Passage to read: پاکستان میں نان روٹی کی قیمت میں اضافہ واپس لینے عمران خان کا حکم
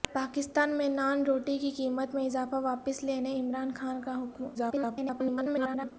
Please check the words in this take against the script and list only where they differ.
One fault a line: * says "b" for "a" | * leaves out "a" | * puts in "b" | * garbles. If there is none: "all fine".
* garbles